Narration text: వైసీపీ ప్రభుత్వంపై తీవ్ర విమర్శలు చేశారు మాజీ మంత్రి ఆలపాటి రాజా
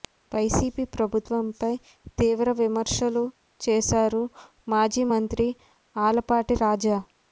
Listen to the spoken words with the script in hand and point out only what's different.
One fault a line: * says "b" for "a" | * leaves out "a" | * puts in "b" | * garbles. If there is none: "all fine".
all fine